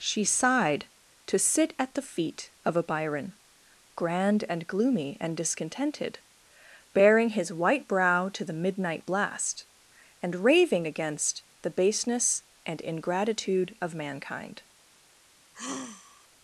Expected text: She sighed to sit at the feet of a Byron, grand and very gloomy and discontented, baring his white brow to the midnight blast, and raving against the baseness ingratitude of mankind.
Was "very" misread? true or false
true